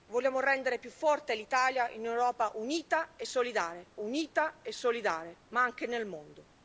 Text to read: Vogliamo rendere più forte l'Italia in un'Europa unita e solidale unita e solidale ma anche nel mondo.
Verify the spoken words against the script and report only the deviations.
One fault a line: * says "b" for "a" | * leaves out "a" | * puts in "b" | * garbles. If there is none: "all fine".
all fine